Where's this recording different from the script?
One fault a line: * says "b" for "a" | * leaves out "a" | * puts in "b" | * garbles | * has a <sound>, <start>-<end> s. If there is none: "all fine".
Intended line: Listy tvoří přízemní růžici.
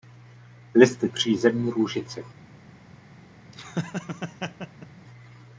* leaves out "tvoří"
* has a laugh, 3.5-4.9 s